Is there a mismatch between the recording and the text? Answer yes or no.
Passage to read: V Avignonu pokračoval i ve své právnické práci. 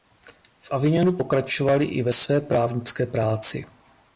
no